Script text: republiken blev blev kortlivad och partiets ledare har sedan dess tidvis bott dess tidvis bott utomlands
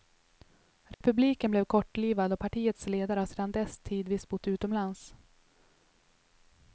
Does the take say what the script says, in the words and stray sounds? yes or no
no